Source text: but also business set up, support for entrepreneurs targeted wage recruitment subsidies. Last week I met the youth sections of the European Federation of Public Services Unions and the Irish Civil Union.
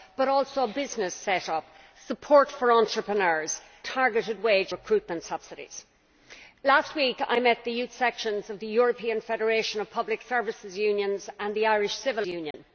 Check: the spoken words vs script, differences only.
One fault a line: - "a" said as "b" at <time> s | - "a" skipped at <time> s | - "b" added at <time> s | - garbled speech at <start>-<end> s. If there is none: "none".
none